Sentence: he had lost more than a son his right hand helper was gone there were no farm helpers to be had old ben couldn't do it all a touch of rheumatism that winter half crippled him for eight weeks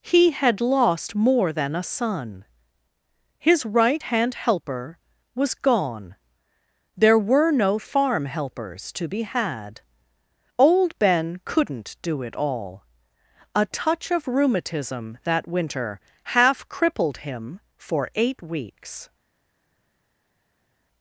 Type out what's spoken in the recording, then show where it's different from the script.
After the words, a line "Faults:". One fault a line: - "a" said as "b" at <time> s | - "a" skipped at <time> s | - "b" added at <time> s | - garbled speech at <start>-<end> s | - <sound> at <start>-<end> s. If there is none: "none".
he had lost more than a son his right hand helper was gone there were no farm helpers to be had old ben couldn't do it all a touch of rheumatism that winter half crippled him for eight weeks
Faults:
none